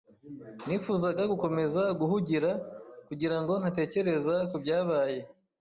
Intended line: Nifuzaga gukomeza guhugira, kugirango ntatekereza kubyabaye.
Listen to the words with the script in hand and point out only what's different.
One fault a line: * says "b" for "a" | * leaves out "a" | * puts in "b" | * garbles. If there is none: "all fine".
all fine